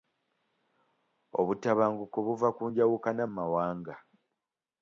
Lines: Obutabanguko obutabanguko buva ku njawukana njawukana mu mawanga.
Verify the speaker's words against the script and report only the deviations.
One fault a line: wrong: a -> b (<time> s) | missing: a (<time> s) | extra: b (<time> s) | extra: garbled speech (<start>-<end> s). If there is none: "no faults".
missing: obutabanguko (2.2 s)
missing: njawukana (3.2 s)